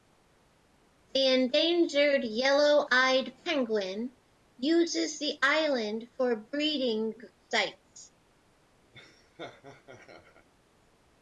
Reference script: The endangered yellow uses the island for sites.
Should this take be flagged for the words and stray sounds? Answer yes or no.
yes